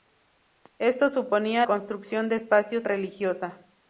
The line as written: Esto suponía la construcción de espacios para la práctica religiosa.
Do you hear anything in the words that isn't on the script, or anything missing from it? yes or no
yes